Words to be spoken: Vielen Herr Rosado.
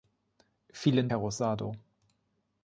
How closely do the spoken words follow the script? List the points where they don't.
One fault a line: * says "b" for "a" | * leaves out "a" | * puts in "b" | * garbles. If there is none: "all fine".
all fine